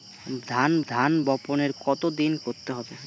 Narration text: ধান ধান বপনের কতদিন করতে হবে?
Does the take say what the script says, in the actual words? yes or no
yes